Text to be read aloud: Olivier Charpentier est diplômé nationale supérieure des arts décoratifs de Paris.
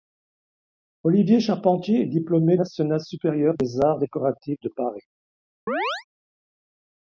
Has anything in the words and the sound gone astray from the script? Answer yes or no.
yes